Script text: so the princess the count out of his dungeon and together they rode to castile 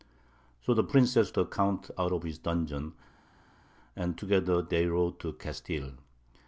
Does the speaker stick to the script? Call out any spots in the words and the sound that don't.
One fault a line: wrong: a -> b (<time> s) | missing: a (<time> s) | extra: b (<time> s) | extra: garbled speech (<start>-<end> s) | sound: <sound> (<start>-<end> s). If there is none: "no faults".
no faults